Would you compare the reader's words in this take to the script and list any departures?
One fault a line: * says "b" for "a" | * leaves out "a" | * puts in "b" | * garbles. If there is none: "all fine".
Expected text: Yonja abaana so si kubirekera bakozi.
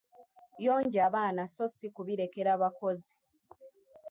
all fine